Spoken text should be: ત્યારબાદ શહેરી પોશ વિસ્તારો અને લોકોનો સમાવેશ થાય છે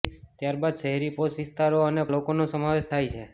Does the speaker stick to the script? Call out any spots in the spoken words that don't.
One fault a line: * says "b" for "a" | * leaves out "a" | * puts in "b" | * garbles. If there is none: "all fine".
all fine